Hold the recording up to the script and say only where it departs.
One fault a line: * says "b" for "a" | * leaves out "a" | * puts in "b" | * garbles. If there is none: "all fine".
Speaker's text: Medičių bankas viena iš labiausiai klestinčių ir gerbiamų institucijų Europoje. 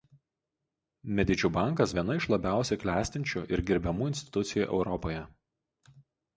all fine